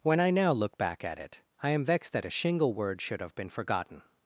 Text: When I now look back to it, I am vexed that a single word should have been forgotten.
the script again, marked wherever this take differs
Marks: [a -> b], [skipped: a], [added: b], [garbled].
When I now look back [to -> at] it, I am vexed that a [single -> shingle] word should have been forgotten.